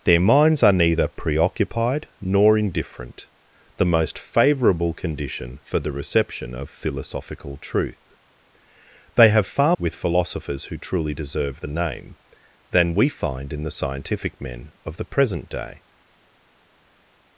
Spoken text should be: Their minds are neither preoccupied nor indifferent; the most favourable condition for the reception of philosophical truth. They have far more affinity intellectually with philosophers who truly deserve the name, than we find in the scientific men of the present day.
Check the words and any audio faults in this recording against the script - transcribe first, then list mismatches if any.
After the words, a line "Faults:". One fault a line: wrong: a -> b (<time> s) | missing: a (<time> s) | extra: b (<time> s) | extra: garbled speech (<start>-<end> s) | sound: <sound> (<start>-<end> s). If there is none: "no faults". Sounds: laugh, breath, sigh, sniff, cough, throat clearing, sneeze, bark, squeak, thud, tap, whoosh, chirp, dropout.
Their minds are neither preoccupied nor indifferent; the most favourable condition for the reception of philosophical truth. They have far with philosophers who truly deserve the name, than we find in the scientific men of the present day.
Faults:
missing: more affinity intellectually (9.8 s)